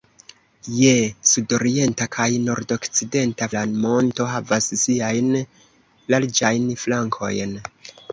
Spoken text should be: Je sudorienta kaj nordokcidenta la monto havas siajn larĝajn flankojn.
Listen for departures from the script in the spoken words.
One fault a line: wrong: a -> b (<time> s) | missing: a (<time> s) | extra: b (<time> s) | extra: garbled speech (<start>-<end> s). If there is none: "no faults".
no faults